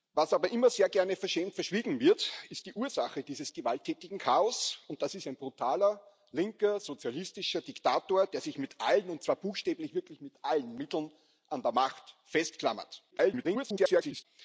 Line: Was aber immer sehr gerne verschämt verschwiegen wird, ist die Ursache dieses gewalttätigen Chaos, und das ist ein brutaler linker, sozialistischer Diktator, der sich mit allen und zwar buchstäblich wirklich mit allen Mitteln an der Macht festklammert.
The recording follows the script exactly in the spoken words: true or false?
false